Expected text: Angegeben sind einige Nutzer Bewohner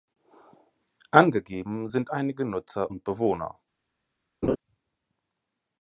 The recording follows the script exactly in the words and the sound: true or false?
false